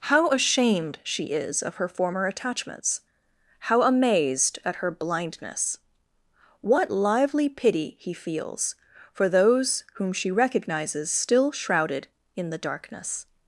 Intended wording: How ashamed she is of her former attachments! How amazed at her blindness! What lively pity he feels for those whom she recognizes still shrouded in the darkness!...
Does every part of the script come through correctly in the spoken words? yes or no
yes